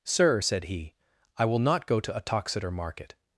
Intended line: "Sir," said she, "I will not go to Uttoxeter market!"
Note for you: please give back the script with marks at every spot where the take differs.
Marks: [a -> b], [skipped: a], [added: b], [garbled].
"Sir," said [she, -> he] "I will not go to Uttoxeter market!"